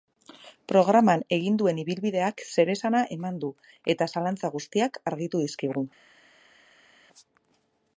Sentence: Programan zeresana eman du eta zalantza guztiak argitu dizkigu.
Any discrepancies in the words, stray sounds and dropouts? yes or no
yes